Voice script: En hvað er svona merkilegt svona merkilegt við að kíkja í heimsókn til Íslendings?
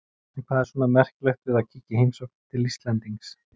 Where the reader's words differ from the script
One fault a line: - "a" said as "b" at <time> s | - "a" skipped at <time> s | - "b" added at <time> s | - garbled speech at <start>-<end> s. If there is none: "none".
- "svona merkilegt" skipped at 1.5 s